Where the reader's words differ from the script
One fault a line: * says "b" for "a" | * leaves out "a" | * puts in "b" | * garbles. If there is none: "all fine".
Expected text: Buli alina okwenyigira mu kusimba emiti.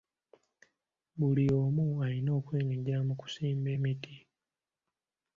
* puts in "omu"